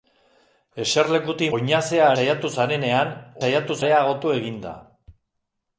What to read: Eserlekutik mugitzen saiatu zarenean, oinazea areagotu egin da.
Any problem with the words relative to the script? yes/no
yes